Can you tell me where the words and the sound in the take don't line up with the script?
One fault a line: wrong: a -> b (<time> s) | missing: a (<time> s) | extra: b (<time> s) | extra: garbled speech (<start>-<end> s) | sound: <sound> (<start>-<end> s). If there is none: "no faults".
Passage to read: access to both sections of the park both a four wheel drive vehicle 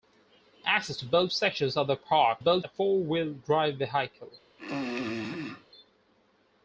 sound: throat clearing (4.6-5.7 s)